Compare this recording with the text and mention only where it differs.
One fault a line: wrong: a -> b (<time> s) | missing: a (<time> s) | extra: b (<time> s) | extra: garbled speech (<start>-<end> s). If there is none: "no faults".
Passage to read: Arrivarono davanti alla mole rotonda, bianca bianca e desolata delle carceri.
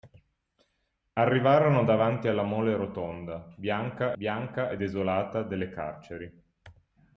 no faults